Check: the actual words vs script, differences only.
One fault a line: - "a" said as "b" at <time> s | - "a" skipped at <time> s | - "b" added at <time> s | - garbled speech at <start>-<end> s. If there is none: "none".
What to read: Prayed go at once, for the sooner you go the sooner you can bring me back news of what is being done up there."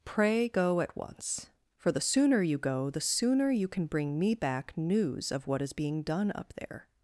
- "Prayed" said as "Pray" at 0.0 s